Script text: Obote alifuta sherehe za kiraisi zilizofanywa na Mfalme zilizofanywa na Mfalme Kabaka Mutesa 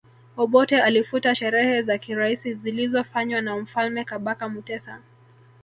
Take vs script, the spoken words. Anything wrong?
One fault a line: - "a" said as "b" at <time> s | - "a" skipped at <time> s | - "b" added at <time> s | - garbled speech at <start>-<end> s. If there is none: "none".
- "zilizofanywa na Mfalme" skipped at 4.0 s